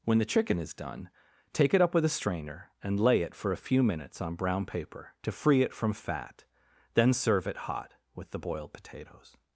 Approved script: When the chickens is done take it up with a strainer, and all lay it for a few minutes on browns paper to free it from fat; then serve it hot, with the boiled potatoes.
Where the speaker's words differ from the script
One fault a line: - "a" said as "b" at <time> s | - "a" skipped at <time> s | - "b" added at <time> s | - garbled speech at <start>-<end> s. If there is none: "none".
- "chickens" said as "chicken" at 0.2 s
- "all" skipped at 3.0 s
- "browns" said as "brown" at 4.3 s